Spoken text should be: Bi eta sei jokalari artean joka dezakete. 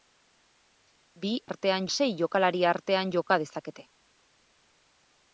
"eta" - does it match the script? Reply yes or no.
no